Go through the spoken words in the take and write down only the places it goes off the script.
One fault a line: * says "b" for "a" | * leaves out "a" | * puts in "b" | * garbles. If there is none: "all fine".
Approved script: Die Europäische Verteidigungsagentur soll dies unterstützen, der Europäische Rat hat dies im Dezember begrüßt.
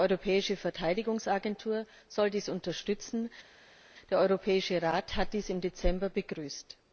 all fine